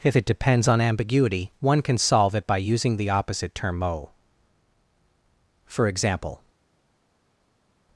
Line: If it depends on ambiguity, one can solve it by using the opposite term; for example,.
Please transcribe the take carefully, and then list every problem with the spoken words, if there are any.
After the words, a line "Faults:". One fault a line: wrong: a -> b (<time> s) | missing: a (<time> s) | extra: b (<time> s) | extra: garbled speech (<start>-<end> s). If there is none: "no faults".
If it depends on ambiguity, one can solve it by using the opposite term; mo for example,.
Faults:
extra: mo (3.8 s)